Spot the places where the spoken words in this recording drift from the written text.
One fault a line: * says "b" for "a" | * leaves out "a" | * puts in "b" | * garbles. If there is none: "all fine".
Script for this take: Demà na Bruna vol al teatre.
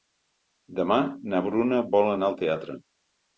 * puts in "anar"